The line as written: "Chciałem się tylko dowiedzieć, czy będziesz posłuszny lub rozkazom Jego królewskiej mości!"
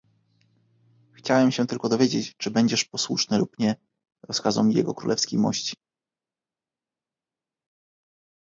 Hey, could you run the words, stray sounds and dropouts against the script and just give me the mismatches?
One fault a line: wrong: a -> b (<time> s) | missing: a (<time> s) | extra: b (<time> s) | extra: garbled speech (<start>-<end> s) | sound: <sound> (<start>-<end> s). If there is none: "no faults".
extra: nie (3.6 s)